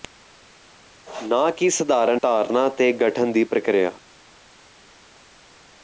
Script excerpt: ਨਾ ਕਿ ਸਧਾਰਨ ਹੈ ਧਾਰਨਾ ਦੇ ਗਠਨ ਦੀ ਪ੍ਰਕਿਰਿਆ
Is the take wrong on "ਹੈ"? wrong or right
wrong